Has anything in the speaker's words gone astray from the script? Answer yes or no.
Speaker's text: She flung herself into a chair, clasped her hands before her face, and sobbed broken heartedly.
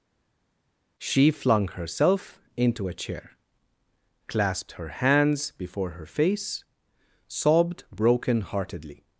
yes